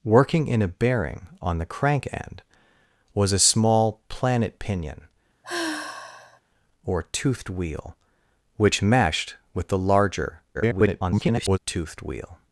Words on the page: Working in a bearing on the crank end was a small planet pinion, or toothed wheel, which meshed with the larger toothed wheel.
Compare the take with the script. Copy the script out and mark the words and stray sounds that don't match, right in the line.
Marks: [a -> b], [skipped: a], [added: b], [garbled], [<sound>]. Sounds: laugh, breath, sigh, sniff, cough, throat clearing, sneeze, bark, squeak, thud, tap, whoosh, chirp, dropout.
Working in a bearing on the crank end was a small planet pinion, [sigh] or toothed wheel, which meshed with the larger [garbled] toothed wheel.